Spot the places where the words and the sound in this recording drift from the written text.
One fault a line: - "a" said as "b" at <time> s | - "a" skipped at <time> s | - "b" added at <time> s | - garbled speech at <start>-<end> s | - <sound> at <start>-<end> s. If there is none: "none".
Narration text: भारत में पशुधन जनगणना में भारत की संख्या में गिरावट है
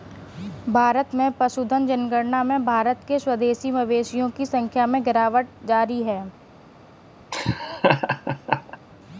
- "के स्वदेशी मवेशियों" added at 3.1 s
- "जारी" added at 5.7 s
- laugh at 7.3-8.8 s